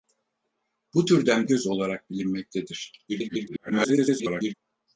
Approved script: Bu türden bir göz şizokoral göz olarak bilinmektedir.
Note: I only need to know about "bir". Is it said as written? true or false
false